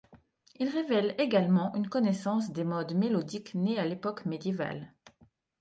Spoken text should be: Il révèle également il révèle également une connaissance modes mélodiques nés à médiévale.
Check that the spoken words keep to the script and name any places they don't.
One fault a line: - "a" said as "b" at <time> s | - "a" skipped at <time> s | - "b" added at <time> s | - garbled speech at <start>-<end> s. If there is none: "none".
- "il révèle également" skipped at 1.8 s
- "des" added at 2.5 s
- "l'époque" added at 3.9 s